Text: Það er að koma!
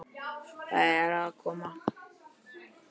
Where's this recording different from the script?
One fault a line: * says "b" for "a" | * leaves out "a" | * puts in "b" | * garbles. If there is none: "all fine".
all fine